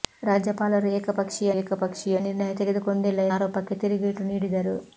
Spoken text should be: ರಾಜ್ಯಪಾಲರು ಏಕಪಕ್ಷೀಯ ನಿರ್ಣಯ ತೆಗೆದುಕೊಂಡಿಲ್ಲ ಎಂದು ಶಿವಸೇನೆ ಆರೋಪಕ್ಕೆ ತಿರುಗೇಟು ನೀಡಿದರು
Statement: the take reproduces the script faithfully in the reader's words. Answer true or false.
false